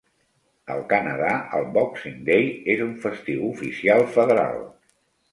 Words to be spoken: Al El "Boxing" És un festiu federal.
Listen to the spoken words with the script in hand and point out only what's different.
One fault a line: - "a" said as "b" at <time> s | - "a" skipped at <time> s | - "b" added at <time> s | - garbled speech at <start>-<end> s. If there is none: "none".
- "Canadà" added at 0.9 s
- "Day" added at 2.3 s
- "oficial" added at 3.5 s